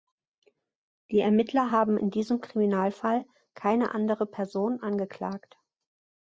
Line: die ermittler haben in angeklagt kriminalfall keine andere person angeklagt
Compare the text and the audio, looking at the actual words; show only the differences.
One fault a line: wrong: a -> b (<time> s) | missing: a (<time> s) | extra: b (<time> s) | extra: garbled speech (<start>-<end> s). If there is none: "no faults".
wrong: angeklagt -> diesem (2.1 s)